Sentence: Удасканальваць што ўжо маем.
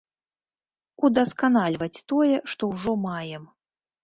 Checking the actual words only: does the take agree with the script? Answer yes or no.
no